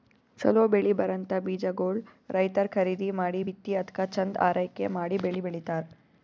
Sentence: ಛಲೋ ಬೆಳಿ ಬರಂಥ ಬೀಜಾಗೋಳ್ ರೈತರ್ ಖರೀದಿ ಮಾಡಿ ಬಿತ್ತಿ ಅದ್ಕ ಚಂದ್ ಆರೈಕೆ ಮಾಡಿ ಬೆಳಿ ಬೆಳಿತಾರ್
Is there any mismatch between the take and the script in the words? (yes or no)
no